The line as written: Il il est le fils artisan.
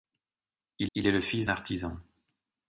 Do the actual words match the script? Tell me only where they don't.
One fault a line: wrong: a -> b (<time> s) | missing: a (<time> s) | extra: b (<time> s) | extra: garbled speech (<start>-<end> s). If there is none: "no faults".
no faults